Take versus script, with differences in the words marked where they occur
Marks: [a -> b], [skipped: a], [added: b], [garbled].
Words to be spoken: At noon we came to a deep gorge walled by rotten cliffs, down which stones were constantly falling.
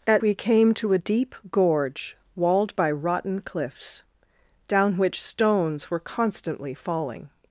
At [skipped: noon] we came to a deep gorge walled by rotten cliffs, down which stones were constantly falling.